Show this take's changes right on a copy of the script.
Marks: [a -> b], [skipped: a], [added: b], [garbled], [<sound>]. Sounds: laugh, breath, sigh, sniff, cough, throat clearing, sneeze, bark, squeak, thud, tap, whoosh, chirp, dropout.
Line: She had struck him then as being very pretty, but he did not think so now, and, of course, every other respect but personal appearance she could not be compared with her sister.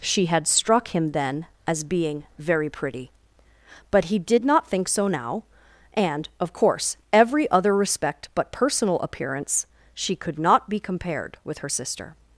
She had struck him then as being very pretty, but he did not think so now, and, of course, every other respect but personal appearance she could not be compared with her sister.